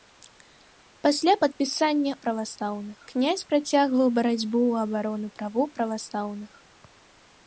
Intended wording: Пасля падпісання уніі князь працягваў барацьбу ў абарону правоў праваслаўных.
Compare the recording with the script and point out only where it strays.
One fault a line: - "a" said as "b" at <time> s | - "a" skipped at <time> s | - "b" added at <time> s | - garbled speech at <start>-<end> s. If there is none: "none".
- "уніі" said as "праваслаўных" at 2.3 s